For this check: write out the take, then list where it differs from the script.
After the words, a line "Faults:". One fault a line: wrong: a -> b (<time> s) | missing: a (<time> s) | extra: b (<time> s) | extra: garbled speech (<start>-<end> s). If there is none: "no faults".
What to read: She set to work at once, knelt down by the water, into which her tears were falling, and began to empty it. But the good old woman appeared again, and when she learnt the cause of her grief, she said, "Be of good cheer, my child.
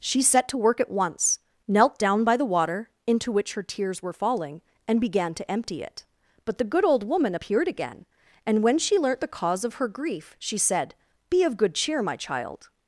She set to work at once, knelt down by the water, into which her tears were falling, and began to empty it. But the good old woman appeared again, and when she learnt the cause of her grief, she said, "Be of good cheer, my child.
Faults:
no faults